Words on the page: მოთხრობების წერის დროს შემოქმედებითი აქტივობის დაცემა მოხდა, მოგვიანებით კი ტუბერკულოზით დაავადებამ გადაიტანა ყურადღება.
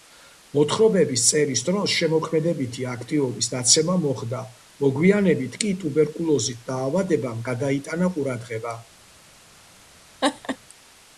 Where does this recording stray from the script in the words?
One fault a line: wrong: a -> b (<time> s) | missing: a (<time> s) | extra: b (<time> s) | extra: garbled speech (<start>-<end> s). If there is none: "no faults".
no faults